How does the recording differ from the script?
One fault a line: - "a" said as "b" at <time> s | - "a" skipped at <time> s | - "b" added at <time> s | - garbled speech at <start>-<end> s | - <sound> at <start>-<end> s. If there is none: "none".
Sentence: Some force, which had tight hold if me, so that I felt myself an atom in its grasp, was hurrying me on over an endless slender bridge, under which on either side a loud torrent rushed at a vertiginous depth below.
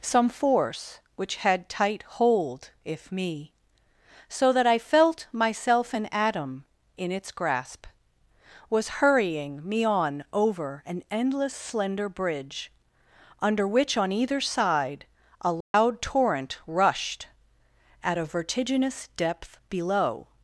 - dropout at 15.6-15.7 s